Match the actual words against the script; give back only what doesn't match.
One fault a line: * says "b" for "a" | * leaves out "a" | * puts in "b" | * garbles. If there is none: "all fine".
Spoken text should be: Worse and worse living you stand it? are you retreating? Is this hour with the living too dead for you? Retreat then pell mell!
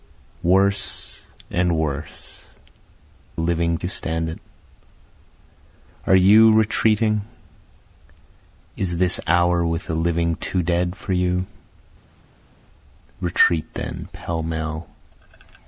all fine